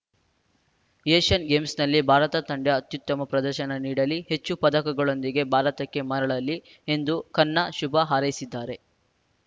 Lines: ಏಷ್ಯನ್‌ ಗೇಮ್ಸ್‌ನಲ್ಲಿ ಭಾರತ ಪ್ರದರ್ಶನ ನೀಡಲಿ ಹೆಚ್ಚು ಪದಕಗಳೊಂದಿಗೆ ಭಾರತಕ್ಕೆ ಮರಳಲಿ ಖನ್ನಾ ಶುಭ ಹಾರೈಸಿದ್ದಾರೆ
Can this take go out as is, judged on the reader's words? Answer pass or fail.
fail